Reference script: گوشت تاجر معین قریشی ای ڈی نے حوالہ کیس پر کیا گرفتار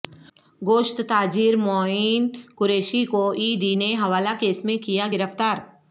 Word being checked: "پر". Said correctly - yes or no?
no